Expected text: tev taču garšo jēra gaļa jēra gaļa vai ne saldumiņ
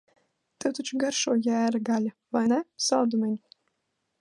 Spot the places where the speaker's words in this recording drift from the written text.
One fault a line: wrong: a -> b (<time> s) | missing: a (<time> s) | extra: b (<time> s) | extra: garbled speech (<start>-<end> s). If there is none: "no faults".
missing: jēra gaļa (2.1 s)